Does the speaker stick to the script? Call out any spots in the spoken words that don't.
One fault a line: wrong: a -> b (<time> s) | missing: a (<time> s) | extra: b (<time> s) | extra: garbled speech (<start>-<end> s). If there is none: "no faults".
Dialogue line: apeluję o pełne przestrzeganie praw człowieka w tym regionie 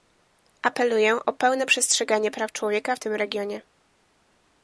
no faults